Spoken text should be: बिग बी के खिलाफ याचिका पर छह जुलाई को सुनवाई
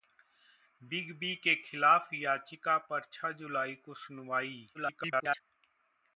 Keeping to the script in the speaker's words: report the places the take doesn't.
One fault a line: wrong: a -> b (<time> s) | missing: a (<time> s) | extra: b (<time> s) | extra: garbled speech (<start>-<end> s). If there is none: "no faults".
extra: garbled speech (4.7-5.4 s)